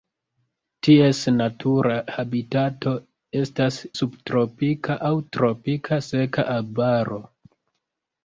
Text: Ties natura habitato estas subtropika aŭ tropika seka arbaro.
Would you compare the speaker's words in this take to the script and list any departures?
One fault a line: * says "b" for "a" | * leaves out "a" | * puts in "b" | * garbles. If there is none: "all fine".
all fine